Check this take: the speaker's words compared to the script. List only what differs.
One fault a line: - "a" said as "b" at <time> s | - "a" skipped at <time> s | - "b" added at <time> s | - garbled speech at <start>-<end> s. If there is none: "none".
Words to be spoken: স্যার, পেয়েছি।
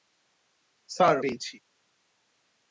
none